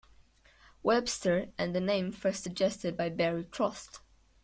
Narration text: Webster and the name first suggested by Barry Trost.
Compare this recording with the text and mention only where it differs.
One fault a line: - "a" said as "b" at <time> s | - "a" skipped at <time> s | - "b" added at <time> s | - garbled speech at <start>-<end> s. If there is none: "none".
none